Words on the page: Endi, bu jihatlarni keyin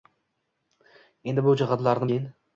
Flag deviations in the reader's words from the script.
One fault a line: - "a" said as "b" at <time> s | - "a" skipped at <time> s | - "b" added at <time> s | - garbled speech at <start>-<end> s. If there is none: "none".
none